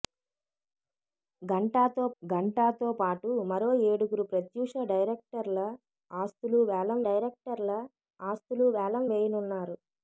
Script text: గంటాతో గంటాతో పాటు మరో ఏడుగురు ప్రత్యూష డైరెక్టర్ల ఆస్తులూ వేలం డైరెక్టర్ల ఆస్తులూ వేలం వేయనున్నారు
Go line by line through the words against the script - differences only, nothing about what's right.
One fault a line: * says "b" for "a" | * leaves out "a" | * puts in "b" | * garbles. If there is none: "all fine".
all fine